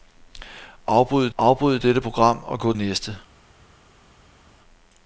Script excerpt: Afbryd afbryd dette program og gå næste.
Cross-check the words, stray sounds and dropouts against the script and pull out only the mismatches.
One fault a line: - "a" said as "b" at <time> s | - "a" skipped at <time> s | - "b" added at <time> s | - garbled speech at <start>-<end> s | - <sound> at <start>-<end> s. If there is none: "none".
none